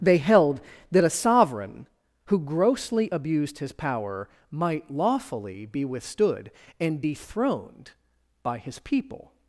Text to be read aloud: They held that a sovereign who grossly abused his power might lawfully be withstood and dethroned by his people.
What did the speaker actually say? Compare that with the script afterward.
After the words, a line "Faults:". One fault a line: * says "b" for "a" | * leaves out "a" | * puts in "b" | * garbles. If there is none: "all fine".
They held that a sovereign who grossly abused his power might lawfully be withstood and dethroned by his people.
Faults:
all fine